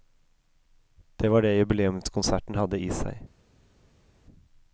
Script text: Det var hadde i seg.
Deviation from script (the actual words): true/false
true